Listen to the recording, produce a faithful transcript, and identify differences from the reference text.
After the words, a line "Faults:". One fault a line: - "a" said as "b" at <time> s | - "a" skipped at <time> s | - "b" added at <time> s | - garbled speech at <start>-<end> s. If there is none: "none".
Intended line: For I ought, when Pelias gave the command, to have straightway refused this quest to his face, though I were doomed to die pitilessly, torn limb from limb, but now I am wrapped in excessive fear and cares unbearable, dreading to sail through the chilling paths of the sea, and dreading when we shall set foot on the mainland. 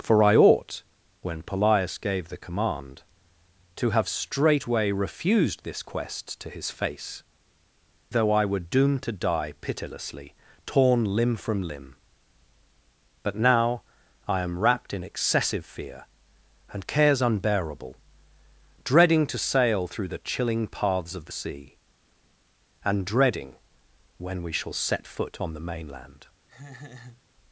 For I ought, when Pelias gave the command, to have straightway refused this quest to his face, though I were doomed to die pitilessly, torn limb from limb, but now I am wrapped in excessive fear and cares unbearable, dreading to sail through the chilling paths of the sea, and dreading when we shall set foot on the mainland.
Faults:
none